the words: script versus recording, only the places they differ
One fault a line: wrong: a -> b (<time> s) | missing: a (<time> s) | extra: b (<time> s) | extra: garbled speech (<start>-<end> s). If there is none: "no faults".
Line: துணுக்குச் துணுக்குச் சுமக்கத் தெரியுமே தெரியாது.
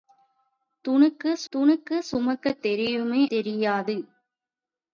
no faults